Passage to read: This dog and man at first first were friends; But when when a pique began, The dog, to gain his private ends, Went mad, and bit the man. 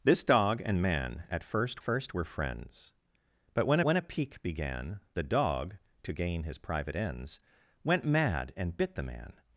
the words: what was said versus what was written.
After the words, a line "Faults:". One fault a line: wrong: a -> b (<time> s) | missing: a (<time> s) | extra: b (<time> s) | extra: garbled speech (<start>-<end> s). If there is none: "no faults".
This dog and man at first first were friends; But when when a pique began, The dog, to gain his private ends, Went mad, and bit the man.
Faults:
no faults